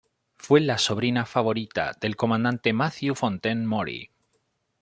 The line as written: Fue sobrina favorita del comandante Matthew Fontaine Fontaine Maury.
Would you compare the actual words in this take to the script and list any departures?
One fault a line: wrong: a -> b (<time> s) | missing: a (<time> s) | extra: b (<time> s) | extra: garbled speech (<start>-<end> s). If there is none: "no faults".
extra: la (0.6 s)
missing: Fontaine (3.6 s)